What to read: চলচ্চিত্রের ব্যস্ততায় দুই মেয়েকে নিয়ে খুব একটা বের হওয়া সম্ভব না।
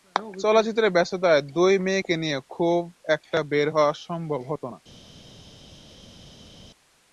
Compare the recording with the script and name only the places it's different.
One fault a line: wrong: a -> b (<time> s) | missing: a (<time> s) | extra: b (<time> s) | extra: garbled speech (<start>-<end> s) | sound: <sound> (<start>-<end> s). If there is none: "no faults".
extra: হতো (4.5 s)